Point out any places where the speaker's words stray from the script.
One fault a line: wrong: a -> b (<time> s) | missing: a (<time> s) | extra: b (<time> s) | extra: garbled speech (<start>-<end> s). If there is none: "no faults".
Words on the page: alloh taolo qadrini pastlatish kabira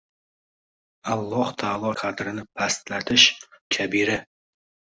no faults